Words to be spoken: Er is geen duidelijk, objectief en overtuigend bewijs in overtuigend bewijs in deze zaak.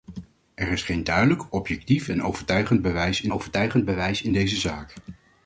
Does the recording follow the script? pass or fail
pass